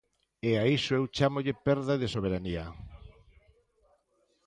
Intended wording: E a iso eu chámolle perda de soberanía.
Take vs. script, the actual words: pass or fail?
pass